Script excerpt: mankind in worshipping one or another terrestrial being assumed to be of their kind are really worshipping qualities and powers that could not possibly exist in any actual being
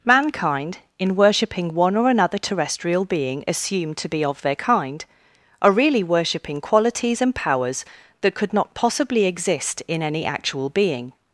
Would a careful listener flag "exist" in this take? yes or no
no